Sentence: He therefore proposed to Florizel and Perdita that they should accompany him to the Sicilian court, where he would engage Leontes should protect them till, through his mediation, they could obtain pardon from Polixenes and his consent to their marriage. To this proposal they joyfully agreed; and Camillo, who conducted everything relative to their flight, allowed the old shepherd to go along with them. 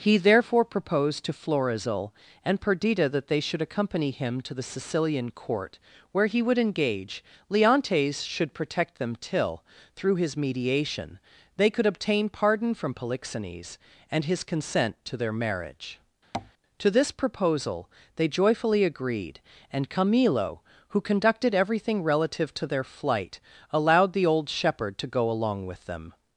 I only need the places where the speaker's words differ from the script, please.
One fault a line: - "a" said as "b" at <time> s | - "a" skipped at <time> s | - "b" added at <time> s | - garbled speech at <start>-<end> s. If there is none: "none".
none